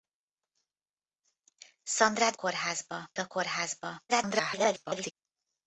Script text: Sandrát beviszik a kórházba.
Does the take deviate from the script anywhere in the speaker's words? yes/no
yes